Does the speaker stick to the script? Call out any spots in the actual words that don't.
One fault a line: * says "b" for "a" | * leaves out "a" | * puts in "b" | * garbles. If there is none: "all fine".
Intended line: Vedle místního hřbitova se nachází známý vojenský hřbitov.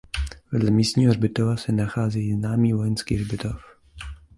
all fine